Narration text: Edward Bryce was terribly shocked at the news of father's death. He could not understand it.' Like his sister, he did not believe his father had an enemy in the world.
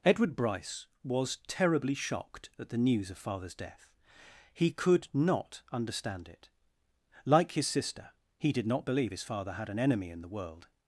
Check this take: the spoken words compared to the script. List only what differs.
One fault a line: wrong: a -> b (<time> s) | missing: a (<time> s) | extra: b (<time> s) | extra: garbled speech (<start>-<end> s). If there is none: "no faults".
no faults